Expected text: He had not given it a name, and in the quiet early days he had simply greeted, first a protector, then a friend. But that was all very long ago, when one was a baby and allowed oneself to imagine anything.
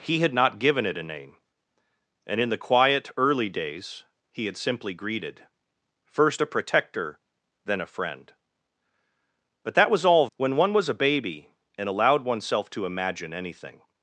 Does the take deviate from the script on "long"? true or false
true